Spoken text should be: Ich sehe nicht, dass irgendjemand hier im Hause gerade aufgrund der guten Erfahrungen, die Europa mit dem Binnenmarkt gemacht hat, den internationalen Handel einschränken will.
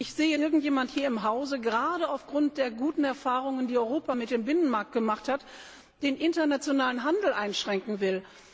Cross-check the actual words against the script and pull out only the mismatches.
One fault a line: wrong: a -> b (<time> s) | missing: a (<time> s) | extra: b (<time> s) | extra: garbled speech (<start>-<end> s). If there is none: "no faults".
missing: nicht dass (0.4 s)